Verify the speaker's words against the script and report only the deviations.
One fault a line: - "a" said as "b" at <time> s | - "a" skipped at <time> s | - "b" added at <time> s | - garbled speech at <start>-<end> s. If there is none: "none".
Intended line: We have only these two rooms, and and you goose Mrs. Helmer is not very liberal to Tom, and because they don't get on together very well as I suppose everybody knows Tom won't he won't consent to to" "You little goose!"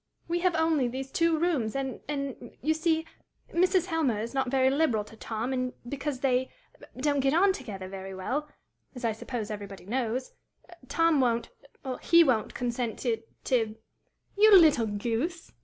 - "goose" said as "see" at 2.7 s